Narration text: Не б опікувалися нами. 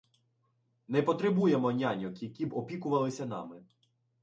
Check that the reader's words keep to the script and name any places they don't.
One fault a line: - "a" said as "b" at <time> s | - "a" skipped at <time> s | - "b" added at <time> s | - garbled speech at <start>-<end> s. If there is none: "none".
- "потребуємо няньок які" added at 1.0 s